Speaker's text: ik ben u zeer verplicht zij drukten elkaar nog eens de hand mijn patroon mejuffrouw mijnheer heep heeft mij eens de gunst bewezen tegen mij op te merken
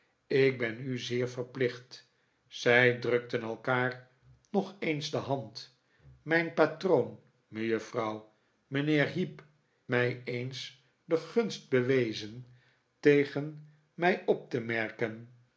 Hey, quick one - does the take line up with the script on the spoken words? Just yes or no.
no